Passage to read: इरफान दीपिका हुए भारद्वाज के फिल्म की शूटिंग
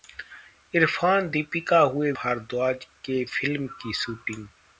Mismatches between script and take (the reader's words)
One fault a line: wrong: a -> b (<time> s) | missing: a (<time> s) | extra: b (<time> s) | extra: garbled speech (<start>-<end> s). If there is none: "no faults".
no faults